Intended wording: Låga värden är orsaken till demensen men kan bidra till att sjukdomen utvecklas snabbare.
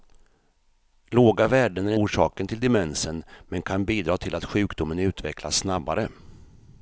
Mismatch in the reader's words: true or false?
false